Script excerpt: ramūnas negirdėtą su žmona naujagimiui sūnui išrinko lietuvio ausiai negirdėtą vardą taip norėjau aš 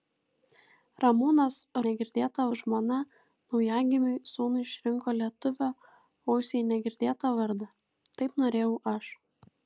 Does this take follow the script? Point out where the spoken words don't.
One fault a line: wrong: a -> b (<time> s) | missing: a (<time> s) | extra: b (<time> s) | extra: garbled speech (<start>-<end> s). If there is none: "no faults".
no faults